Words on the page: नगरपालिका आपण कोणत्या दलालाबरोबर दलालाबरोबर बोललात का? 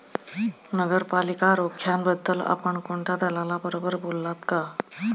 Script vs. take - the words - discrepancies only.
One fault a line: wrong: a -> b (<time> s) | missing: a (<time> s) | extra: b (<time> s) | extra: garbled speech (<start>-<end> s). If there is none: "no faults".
extra: रोख्यांबद्दल (1.6 s)
missing: दलालाबरोबर (3.9 s)